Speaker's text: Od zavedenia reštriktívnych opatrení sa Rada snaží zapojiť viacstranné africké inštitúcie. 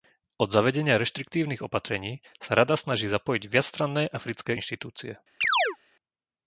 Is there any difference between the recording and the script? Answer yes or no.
no